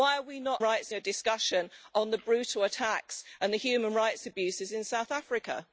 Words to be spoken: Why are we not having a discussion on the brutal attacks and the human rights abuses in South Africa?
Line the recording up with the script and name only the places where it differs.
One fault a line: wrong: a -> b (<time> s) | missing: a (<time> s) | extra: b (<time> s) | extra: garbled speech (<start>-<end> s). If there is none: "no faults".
wrong: having -> rights (0.6 s)